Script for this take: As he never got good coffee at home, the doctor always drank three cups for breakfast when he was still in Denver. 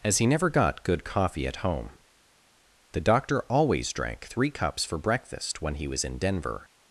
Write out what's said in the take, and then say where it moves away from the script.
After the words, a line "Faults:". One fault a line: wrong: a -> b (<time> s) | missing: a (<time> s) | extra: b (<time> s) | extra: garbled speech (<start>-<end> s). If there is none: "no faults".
As he never got good coffee at home, the doctor always drank three cups for breakfast when he was in Denver.
Faults:
missing: still (6.0 s)